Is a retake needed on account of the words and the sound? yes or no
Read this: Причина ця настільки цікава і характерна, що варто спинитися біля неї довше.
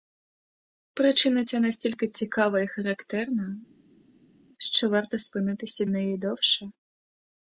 yes